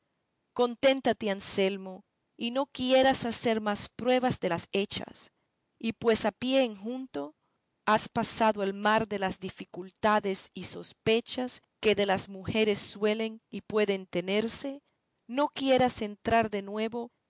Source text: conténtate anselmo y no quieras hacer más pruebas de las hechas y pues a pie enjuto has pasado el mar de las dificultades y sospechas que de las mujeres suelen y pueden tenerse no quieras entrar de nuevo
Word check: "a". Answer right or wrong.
right